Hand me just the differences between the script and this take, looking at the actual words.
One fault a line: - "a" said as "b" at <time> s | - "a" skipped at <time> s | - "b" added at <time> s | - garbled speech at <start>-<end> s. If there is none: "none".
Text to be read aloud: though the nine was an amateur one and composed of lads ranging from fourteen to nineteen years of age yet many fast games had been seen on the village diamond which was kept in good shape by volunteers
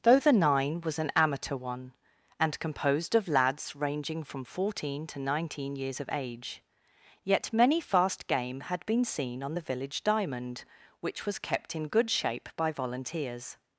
- "games" said as "game" at 8.3 s